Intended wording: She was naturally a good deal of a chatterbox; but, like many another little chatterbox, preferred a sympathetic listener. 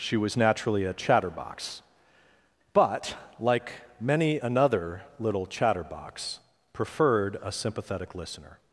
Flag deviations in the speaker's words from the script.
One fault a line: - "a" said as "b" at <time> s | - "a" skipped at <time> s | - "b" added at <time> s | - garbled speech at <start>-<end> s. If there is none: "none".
- "good deal of a" skipped at 0.9 s